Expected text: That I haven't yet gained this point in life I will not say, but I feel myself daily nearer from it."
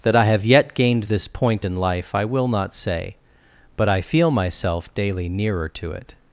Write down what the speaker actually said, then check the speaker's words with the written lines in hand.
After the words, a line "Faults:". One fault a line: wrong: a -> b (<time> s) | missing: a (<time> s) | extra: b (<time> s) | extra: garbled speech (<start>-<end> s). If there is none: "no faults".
That I have yet gained this point in life I will not say, but I feel myself daily nearer to it."
Faults:
wrong: haven't -> have (0.2 s)
wrong: from -> to (5.7 s)